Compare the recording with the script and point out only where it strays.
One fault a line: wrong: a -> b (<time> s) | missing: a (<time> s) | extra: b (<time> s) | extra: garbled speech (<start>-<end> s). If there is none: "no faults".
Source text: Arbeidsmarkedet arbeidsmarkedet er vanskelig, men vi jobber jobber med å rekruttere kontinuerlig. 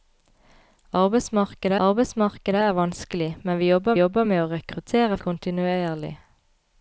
no faults